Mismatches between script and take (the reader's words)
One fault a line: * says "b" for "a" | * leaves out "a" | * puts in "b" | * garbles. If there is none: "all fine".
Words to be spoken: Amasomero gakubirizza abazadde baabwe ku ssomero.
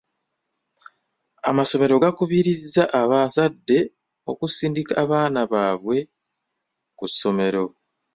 * puts in "okusindika abaana"